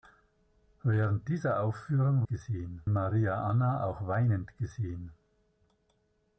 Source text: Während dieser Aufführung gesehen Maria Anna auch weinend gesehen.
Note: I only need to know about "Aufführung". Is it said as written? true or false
true